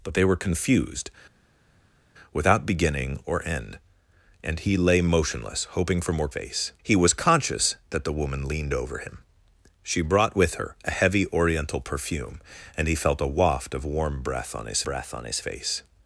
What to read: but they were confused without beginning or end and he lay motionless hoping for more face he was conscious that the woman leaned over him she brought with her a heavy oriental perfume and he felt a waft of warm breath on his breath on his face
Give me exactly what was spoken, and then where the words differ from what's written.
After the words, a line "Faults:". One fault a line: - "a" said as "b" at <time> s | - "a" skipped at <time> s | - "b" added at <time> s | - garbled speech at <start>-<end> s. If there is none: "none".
but they were confused without beginning or end and he lay motionless hoping for more face he was conscious that the woman leaned over him she brought with her a heavy oriental perfume and he felt a waft of warm breath on his breath on his face
Faults:
none